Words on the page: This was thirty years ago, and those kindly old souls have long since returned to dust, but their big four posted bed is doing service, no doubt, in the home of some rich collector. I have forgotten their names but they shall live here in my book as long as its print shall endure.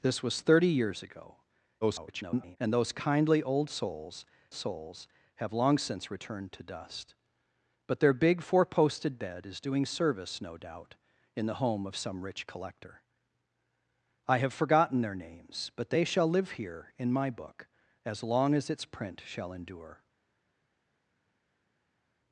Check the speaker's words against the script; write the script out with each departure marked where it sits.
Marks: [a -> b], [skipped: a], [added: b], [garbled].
This was thirty years ago, [garbled] and those kindly old souls [added: souls] have long since returned to dust, but their big four posted bed is doing service, no doubt, in the home of some rich collector. I have forgotten their names but they shall live here in my book as long as its print shall endure.